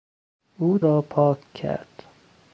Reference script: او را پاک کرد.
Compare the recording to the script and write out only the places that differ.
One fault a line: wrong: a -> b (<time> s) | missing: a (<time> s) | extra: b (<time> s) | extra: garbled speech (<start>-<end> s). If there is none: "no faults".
no faults